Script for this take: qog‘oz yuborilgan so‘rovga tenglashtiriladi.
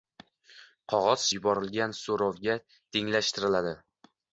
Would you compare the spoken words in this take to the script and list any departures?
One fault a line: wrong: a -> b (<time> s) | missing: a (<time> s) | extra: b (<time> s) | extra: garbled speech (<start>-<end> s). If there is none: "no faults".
no faults